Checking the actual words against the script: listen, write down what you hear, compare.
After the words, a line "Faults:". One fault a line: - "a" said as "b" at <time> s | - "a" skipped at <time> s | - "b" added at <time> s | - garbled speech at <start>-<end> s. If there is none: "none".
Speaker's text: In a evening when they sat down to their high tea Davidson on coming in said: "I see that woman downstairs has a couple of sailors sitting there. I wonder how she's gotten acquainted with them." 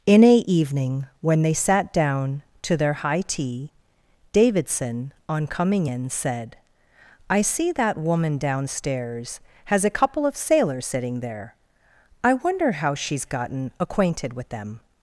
In a evening when they sat down to their high tea Davidson on coming in said: "I see that woman downstairs has a couple of sailors sitting there. I wonder how she's gotten acquainted with them."
Faults:
none